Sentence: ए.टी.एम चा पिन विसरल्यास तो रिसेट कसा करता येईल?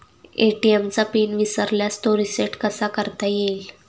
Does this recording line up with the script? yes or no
yes